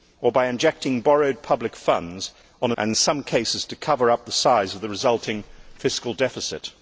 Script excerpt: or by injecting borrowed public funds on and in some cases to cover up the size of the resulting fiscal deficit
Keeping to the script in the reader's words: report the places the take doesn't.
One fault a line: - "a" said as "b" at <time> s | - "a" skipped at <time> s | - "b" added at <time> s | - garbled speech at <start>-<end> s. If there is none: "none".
none